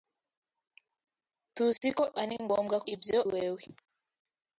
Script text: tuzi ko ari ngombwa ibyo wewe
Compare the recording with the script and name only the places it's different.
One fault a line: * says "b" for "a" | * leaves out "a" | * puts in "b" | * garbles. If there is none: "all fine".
all fine